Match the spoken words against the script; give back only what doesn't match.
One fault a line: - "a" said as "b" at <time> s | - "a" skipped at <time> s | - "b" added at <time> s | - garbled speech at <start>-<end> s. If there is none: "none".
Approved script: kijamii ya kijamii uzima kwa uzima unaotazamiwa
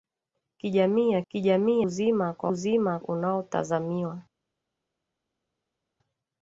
none